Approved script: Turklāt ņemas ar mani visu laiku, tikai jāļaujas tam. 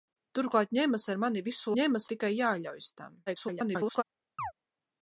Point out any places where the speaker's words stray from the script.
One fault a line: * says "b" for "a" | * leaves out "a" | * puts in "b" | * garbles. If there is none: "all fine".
* says "ņemas" for "laiku"
* garbles